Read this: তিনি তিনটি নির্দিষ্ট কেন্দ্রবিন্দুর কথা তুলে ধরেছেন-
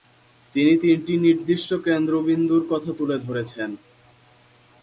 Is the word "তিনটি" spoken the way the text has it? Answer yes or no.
yes